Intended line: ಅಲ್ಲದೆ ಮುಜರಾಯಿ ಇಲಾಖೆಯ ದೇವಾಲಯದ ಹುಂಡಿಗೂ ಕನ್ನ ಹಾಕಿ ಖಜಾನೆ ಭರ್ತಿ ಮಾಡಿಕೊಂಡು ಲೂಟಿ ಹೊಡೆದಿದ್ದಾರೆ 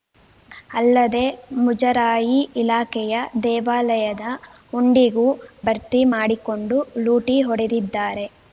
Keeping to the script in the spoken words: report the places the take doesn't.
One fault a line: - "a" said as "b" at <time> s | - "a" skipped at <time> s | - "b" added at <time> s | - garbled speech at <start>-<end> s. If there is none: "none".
- "ಕನ್ನ ಹಾಕಿ ಖಜಾನೆ" skipped at 5.3 s